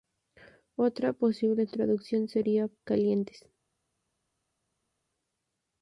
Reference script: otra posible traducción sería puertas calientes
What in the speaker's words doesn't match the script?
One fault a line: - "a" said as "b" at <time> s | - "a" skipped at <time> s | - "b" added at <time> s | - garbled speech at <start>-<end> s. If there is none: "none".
- "puertas" skipped at 2.7 s